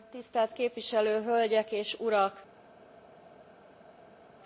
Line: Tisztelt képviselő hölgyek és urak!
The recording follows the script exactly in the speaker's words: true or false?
true